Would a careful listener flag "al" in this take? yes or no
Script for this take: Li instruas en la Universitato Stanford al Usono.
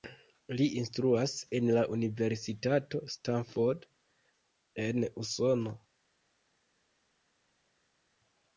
yes